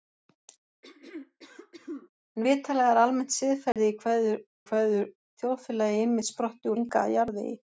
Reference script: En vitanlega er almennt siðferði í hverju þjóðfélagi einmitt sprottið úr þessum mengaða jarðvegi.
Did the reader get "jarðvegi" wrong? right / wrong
right